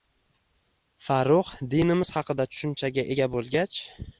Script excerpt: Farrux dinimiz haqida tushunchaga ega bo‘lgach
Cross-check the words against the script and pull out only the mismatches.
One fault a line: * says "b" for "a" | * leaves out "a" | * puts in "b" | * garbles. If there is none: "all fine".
all fine